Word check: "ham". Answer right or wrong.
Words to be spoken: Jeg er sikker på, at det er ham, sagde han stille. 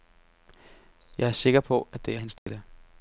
wrong